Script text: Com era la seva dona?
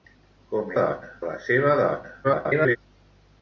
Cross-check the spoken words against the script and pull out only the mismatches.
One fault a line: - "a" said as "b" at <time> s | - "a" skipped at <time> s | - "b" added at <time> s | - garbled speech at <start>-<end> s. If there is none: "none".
- "era" said as "dona" at 0.8 s
- garbled speech at 2.2-2.8 s